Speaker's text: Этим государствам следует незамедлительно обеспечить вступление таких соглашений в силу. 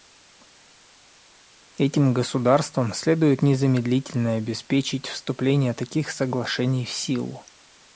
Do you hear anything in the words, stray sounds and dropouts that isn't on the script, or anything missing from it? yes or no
no